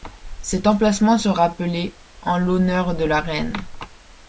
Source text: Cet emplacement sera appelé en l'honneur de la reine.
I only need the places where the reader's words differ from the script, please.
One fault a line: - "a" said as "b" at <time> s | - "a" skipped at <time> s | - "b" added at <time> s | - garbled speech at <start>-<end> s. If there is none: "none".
none